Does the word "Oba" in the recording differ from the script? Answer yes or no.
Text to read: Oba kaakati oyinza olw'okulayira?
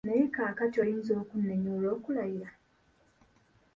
yes